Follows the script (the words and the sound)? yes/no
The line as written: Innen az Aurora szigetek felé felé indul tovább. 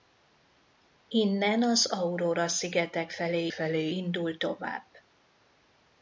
yes